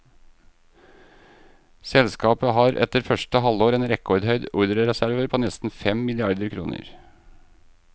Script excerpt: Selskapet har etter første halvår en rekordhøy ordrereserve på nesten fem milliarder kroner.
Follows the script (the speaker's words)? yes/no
yes